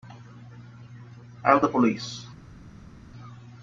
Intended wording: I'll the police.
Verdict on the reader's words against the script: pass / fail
pass